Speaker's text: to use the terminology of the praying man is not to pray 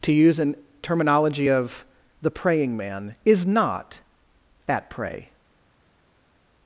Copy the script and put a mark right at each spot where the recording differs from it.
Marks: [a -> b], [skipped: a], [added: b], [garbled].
to use [the -> an] terminology of the praying man is not [to -> at] pray